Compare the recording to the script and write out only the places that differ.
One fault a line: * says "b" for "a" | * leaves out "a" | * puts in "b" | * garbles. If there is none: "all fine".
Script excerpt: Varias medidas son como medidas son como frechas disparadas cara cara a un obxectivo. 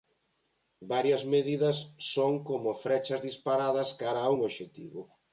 * leaves out "medidas son como"
* leaves out "cara"